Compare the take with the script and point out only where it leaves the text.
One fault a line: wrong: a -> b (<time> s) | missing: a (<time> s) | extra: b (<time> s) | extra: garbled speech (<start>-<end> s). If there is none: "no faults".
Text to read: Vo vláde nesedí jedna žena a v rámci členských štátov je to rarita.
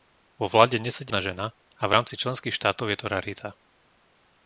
no faults